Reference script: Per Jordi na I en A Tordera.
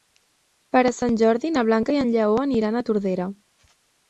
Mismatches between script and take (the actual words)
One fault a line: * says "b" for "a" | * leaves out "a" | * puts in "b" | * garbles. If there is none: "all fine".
* puts in "Sant"
* puts in "Blanca"
* puts in "Lleó aniran"